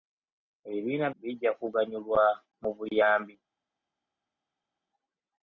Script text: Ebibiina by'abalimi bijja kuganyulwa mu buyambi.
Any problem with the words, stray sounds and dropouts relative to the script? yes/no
yes